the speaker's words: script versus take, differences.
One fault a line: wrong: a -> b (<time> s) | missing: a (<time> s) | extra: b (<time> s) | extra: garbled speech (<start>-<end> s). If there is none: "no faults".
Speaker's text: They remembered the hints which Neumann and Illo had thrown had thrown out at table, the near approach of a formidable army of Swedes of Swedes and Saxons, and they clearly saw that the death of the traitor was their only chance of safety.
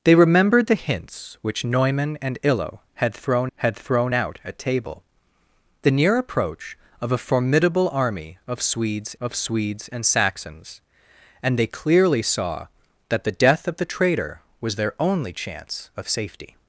no faults